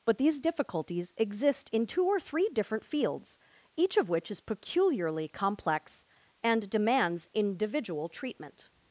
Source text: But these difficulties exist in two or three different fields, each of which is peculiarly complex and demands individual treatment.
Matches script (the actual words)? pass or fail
pass